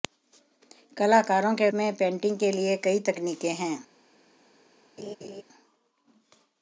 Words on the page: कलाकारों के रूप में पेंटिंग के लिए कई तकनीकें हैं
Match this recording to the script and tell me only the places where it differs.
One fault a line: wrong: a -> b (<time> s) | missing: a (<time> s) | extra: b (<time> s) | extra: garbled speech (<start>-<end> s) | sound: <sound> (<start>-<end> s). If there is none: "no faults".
missing: रूप (1.7 s)
sound: laugh (5.0-5.4 s)